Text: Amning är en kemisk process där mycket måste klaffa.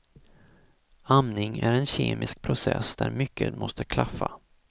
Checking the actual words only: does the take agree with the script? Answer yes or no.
yes